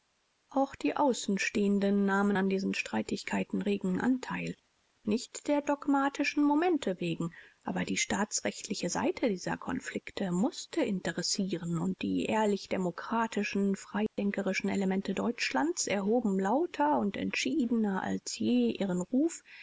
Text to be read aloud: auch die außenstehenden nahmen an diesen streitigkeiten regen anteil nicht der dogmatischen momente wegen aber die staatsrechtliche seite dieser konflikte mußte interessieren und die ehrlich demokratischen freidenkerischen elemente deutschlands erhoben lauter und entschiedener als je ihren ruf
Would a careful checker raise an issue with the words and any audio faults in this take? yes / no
yes